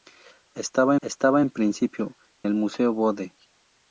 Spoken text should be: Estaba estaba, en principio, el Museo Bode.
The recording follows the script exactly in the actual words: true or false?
true